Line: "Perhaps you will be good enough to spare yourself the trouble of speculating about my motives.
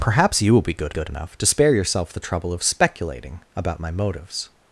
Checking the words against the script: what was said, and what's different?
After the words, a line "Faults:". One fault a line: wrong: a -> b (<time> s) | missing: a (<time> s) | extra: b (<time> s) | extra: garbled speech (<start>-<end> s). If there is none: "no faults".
"Perhaps you will be good good enough to spare yourself the trouble of speculating about my motives.
Faults:
extra: good (0.9 s)